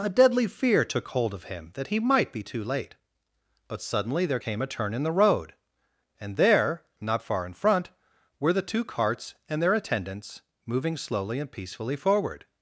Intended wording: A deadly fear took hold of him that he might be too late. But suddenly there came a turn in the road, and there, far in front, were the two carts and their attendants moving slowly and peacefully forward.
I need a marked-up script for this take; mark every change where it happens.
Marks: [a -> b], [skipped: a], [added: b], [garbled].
A deadly fear took hold of him that he might be too late. But suddenly there came a turn in the road, and there, [added: not] far in front, were the two carts and their attendants moving slowly and peacefully forward.